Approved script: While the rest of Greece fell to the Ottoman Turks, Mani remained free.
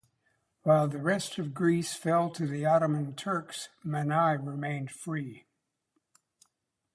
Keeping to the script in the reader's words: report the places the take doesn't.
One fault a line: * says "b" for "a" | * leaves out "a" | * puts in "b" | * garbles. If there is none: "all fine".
all fine